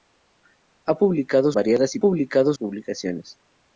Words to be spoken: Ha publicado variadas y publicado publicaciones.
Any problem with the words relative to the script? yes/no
no